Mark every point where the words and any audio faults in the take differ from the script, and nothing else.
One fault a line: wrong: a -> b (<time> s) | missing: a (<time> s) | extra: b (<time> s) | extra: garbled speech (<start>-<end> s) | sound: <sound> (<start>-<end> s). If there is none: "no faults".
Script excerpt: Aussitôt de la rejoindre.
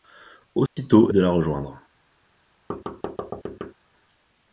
sound: dropout (0.7-0.8 s)
sound: thud (2.7-3.7 s)